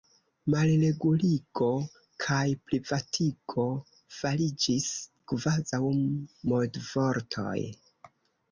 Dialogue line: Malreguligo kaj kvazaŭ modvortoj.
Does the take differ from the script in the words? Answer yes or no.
yes